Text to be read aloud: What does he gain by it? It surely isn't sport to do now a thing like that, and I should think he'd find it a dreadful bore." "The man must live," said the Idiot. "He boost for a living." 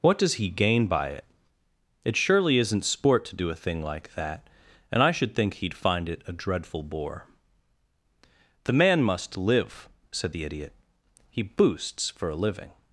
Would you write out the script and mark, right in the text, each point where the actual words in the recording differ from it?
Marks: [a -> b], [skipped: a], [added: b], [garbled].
What does he gain by it? It surely isn't sport to do [skipped: now] a thing like that, and I should think he'd find it a dreadful bore." "The man must live," said the Idiot. "He [boost -> boosts] for a living."